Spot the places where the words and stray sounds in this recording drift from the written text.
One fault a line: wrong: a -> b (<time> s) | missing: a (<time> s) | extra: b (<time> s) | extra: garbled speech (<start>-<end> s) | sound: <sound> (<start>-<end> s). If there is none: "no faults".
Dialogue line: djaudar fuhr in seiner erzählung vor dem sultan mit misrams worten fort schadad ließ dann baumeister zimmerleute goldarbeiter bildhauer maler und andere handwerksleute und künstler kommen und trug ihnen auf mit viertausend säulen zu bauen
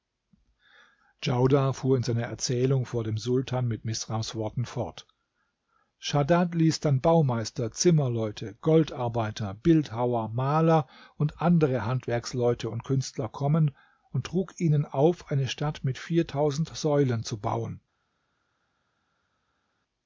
extra: eine stadt (15.3 s)